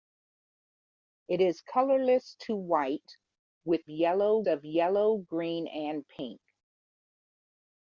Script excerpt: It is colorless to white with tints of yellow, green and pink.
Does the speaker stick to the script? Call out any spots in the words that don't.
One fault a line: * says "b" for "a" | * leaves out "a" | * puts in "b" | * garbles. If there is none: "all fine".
* says "yellow" for "tints"